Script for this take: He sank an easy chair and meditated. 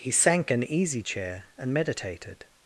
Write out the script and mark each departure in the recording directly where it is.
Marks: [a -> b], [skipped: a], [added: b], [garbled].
He sank an easy chair and meditated.